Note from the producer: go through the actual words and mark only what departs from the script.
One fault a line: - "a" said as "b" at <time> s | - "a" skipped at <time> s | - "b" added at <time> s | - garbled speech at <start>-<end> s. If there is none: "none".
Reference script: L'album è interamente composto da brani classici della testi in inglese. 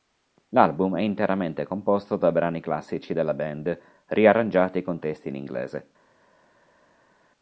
- "band riarrangiati con" added at 3.3 s